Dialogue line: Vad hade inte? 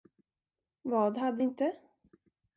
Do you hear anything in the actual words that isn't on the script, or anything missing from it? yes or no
no